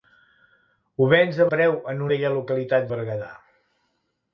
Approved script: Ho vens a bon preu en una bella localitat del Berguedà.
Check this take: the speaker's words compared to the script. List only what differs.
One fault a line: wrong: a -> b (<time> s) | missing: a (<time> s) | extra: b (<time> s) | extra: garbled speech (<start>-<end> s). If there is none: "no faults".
missing: bon (1.5 s)
missing: una (2.0 s)
missing: del (2.9 s)